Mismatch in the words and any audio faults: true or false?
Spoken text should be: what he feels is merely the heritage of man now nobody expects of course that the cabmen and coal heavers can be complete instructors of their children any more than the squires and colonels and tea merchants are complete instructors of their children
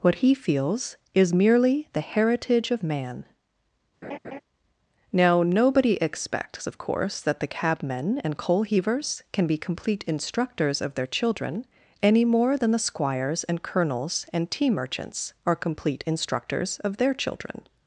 true